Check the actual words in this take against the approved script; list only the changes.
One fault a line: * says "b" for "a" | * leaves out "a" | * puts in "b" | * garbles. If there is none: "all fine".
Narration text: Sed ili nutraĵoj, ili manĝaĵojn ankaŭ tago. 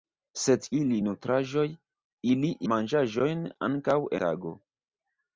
all fine